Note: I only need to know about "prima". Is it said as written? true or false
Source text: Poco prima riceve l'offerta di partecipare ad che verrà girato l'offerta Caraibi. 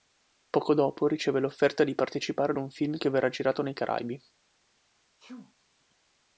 false